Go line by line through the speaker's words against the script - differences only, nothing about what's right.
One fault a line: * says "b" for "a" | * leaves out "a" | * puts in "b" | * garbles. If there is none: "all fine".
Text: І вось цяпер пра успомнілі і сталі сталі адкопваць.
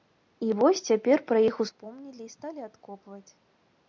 * puts in "іх"
* leaves out "сталі"